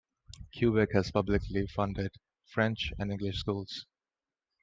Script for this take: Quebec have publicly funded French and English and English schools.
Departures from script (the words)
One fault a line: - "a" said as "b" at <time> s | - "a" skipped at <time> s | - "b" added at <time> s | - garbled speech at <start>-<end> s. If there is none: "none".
- "have" said as "has" at 0.9 s
- "and English" skipped at 3.4 s